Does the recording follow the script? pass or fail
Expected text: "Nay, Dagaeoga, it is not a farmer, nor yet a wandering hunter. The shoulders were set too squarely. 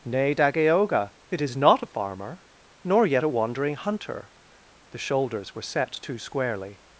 pass